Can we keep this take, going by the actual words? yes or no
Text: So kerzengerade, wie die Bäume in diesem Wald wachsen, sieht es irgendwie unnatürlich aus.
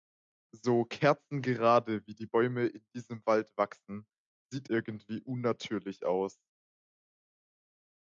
no